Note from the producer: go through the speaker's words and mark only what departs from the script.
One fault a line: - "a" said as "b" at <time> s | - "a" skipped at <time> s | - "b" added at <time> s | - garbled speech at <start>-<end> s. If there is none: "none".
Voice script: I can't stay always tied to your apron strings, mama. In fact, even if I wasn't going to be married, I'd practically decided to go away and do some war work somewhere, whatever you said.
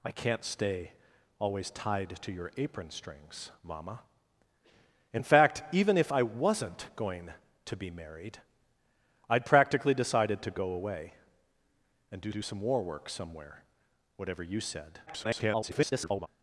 - "do" added at 12.3 s
- garbled speech at 15.1-16.3 s